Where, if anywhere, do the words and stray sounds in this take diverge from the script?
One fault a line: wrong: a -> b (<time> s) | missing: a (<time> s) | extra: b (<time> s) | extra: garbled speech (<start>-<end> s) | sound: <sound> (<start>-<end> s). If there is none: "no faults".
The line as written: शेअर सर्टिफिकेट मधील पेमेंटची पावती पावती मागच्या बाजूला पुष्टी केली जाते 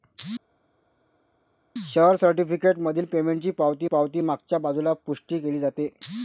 no faults